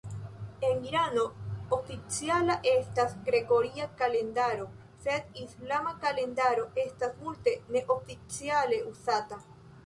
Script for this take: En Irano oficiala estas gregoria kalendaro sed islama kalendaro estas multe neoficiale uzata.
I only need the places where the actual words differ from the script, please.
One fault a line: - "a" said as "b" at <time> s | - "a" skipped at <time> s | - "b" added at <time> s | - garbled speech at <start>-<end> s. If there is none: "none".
none